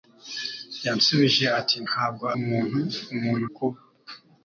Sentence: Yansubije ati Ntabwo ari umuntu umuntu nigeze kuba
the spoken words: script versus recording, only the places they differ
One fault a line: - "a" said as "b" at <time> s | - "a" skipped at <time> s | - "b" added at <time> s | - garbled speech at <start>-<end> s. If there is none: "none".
- "ari" skipped at 2.2 s
- "nigeze" skipped at 3.4 s